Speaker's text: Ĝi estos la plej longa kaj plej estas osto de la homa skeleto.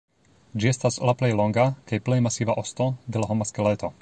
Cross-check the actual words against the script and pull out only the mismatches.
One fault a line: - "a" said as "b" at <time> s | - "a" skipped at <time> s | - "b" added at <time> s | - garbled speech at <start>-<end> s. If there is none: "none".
- "estos" said as "estas" at 0.7 s
- "estas" said as "masiva" at 2.3 s